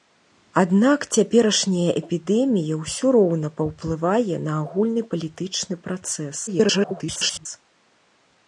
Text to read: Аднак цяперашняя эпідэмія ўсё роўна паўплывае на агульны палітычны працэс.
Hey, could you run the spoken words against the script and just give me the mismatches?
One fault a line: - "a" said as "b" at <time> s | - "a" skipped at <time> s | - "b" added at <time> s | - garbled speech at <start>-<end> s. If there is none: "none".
- garbled speech at 6.5-7.5 s